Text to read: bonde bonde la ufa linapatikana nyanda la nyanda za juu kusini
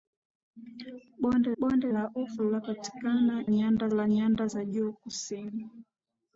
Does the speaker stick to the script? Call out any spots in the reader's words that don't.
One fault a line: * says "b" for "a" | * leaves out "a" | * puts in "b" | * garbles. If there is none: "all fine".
all fine